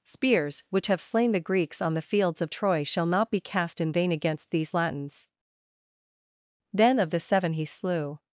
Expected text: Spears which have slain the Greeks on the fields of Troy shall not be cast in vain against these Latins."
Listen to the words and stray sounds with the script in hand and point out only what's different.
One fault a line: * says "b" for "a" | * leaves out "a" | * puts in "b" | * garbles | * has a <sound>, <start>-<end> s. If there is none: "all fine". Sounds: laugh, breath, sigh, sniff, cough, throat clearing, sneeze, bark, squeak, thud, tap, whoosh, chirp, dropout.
* puts in "Then of the seven he slew"